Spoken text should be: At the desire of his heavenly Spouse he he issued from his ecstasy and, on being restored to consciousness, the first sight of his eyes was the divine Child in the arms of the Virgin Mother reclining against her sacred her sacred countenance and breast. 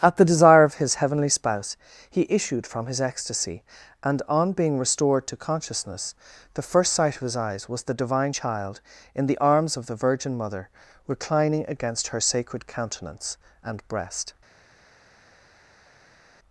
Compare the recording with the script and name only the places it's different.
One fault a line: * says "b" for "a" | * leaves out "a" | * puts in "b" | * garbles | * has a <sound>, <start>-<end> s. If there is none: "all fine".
* leaves out "he"
* leaves out "her sacred"